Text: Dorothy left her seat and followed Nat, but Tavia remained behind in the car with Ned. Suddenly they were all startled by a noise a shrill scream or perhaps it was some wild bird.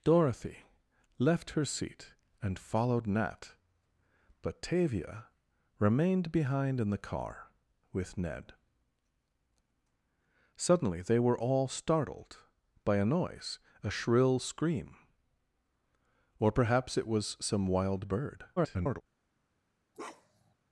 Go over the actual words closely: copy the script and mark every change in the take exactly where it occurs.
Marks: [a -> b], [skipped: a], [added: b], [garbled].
Dorothy left her seat and followed Nat, but Tavia remained behind in the car with Ned. Suddenly they were all startled by a noise a shrill scream or perhaps it was some wild bird. [garbled]